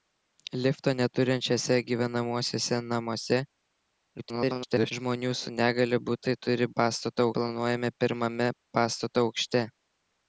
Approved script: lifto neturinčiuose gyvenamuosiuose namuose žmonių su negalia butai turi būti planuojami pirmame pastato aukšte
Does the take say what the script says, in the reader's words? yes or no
no